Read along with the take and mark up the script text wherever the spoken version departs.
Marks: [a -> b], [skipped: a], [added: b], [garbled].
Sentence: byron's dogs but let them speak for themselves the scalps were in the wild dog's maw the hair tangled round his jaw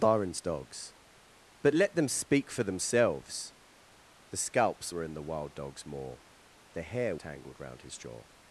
byron's dogs but let them speak for themselves the scalps were in the wild dog's maw the hair tangled round his jaw